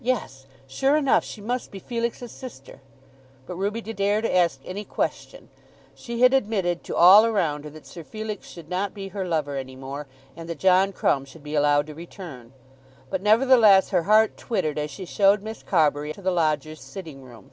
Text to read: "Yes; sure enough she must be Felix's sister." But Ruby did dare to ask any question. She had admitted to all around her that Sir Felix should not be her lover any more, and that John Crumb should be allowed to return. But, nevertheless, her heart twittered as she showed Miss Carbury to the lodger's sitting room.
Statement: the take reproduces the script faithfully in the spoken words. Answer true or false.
true